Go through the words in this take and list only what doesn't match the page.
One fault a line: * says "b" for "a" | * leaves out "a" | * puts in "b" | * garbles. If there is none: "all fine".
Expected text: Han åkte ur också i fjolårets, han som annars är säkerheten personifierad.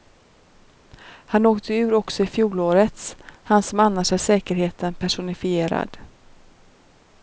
all fine